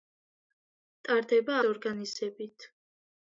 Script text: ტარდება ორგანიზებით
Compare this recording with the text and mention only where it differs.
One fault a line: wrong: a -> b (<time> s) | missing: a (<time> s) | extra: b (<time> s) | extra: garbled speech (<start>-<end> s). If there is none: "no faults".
no faults